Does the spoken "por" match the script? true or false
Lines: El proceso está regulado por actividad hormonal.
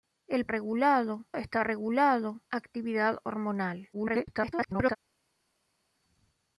false